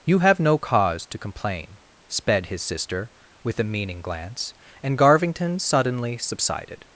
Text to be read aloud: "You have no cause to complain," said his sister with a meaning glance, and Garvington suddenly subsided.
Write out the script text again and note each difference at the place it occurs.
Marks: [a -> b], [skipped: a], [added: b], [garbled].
"You have no cause to complain," [said -> sped] his sister with a meaning glance, and Garvington suddenly subsided.